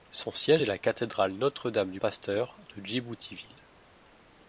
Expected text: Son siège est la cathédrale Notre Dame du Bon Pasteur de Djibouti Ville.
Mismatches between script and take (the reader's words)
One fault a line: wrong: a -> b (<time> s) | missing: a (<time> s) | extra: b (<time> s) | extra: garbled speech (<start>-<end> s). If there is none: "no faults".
missing: Bon (2.0 s)